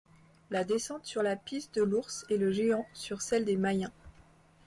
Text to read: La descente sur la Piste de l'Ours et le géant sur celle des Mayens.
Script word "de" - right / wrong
right